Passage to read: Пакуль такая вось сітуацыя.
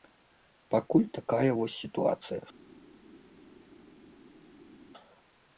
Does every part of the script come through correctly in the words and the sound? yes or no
yes